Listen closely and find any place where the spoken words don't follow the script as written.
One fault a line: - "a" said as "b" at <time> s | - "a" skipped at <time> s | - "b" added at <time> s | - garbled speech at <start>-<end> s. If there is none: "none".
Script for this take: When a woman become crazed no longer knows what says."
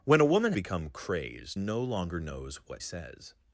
none